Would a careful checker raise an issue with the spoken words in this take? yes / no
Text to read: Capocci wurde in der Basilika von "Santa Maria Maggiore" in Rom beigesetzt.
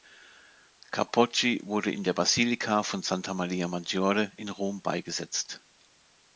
no